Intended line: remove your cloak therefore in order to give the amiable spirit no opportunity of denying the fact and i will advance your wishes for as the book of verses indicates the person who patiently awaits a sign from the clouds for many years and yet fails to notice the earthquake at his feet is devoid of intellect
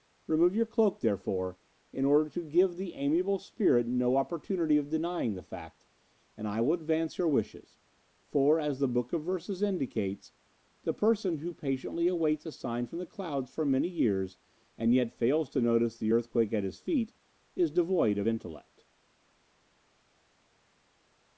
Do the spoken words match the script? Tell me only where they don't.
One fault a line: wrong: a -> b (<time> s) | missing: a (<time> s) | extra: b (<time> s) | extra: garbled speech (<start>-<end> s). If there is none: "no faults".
no faults